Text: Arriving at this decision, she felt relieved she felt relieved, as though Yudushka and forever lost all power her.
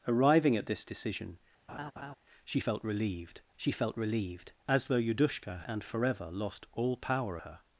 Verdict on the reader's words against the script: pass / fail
pass